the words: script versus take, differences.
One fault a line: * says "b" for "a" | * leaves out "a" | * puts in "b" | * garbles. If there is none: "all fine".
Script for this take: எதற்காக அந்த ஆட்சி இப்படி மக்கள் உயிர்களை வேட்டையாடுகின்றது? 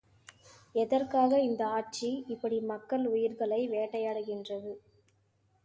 * says "இந்த" for "அந்த"